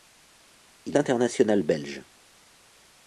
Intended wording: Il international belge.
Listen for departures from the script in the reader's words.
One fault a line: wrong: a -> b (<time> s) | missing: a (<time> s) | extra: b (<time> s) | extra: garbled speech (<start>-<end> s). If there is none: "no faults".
no faults